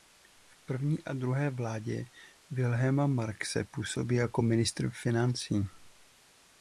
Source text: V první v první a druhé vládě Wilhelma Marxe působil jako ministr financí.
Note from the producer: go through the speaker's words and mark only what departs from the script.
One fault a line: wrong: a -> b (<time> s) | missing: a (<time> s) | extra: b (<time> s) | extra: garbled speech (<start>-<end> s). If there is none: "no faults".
missing: v první (1.0 s)